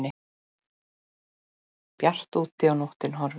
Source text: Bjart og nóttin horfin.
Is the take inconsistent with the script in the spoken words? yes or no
yes